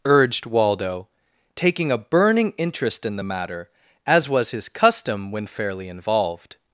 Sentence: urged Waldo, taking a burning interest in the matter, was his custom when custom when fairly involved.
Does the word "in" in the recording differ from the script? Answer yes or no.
no